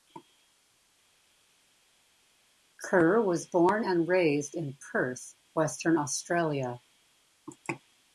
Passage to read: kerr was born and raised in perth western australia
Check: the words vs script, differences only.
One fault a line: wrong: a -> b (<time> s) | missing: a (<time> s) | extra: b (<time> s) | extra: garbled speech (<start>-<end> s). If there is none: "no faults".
no faults